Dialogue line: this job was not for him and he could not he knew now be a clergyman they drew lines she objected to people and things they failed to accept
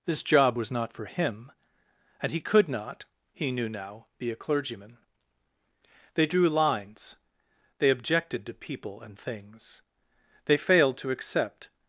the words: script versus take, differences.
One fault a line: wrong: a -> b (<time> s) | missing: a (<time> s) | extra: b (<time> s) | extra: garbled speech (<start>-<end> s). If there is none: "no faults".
wrong: she -> they (7.8 s)